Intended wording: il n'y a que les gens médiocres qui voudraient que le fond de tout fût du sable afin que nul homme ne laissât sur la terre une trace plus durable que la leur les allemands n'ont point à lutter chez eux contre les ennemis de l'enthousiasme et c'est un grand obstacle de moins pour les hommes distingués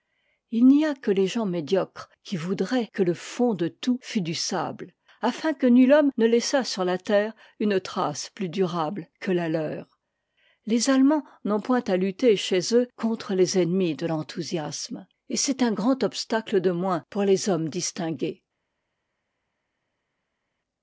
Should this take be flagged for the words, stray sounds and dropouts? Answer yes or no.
no